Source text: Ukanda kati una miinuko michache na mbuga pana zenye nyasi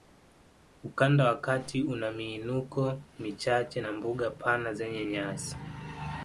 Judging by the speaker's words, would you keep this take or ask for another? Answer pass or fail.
fail